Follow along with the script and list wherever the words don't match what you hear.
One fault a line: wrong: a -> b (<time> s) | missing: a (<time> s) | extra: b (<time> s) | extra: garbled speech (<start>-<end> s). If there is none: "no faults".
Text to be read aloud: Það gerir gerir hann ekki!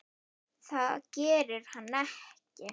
missing: gerir (1.7 s)